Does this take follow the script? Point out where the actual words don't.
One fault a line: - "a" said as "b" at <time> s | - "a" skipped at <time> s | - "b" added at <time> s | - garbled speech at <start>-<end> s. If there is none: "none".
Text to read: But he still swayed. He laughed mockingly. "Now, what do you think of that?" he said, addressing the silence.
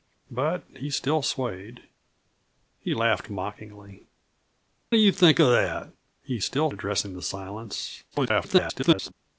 - "Now what" skipped at 4.0 s
- "said" said as "still" at 6.4 s
- garbled speech at 8.1-9.1 s